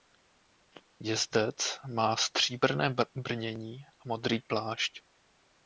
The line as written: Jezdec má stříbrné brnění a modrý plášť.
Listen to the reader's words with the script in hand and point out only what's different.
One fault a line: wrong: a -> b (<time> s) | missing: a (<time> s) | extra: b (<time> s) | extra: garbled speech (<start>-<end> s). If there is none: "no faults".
no faults